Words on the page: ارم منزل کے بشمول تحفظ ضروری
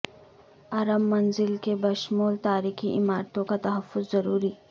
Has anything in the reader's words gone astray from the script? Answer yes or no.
yes